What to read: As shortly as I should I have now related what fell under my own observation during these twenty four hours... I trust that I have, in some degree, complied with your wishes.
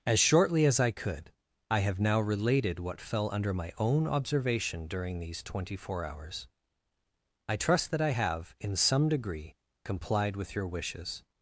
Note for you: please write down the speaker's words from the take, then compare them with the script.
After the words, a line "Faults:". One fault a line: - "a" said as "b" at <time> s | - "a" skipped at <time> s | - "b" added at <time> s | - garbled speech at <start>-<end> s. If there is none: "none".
As shortly as I could I have now related what fell under my own observation during these twenty four hours... I trust that I have, in some degree, complied with your wishes.
Faults:
- "should" said as "could" at 0.9 s